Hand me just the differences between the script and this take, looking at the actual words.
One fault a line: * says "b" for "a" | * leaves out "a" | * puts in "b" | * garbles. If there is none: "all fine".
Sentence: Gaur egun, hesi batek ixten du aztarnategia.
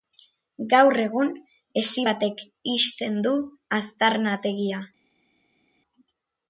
all fine